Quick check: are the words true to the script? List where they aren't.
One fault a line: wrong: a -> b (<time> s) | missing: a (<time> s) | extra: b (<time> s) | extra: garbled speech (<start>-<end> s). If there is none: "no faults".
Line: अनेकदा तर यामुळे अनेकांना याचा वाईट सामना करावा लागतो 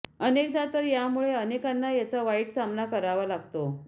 no faults